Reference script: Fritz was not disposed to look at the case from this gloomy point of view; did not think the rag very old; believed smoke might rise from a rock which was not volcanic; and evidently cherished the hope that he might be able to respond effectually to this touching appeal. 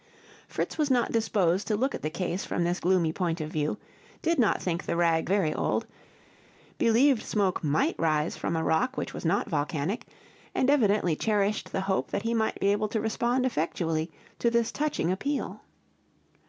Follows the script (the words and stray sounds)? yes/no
yes